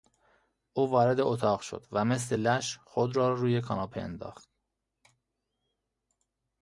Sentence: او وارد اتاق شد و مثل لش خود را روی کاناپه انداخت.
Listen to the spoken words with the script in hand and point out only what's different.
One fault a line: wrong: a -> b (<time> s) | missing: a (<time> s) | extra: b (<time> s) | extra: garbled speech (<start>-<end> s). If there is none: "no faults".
no faults